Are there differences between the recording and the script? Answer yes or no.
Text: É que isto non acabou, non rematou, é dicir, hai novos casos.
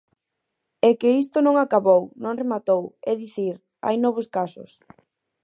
no